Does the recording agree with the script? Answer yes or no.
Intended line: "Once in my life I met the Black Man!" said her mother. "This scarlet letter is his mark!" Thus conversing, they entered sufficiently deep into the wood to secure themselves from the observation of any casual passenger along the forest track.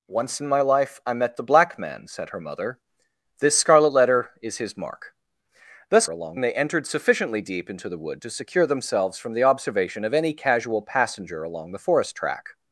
no